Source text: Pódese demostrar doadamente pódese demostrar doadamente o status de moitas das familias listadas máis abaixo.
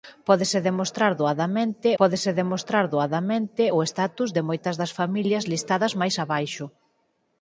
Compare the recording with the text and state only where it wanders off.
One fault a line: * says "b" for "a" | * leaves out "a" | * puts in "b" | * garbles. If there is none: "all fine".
all fine